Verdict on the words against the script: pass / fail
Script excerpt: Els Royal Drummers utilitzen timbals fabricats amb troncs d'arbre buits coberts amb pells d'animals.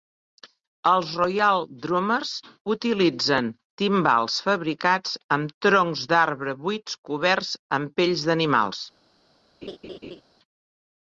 pass